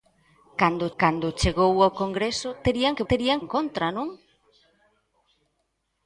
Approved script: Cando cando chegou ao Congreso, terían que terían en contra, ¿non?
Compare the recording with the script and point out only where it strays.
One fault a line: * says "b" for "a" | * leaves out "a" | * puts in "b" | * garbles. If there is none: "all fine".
all fine